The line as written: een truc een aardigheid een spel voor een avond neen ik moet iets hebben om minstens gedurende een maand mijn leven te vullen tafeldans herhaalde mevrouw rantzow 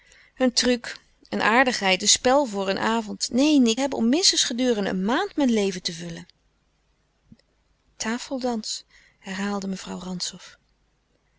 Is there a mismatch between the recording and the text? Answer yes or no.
yes